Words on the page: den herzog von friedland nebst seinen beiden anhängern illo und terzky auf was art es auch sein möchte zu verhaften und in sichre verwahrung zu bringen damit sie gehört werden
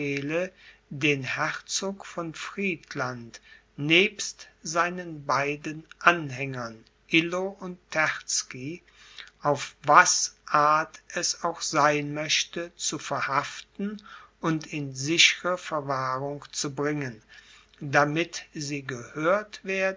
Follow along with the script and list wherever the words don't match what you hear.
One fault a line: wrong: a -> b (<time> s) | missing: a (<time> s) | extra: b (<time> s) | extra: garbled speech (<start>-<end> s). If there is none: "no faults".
no faults